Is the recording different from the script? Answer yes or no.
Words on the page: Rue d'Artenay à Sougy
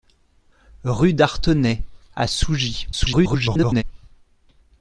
yes